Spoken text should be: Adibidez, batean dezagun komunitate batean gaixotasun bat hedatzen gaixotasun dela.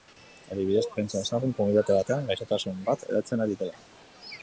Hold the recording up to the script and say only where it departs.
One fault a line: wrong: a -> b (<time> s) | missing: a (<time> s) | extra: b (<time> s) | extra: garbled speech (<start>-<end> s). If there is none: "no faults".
wrong: batean -> pentsa (0.9 s)
wrong: gaixotasun -> ari (3.5 s)